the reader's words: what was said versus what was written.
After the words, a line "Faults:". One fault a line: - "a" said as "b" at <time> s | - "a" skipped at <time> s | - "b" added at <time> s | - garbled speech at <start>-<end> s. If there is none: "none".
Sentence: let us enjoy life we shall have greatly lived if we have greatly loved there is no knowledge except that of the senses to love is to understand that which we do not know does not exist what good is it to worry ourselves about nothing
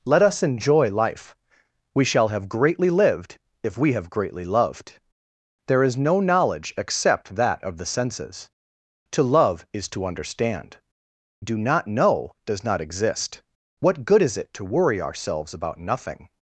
let us enjoy life we shall have greatly lived if we have greatly loved there is no knowledge except that of the senses to love is to understand do not know does not exist what good is it to worry ourselves about nothing
Faults:
- "that which we" skipped at 10.8 s